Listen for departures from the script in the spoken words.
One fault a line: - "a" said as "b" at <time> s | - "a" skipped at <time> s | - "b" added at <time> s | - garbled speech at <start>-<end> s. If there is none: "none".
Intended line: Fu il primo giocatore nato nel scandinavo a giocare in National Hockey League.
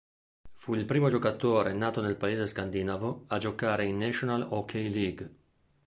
- "paese" added at 2.2 s